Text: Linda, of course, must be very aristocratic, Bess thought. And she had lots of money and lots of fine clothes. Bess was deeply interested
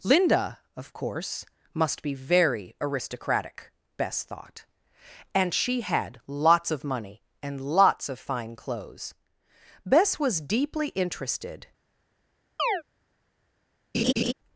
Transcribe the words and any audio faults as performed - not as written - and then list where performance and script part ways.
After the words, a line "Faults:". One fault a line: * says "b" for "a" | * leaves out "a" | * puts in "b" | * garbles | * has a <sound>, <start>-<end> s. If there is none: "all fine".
Linda, of course, must be very aristocratic, Bess thought. And she had lots of money and lots of fine clothes. Bess was deeply interested
Faults:
* has a chirp, 12.6-12.8 s
* has a laugh, 13.9-14.3 s